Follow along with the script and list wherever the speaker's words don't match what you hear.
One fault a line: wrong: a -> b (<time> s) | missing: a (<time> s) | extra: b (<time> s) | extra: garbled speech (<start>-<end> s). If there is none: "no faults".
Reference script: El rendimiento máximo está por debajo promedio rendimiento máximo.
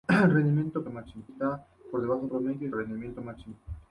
no faults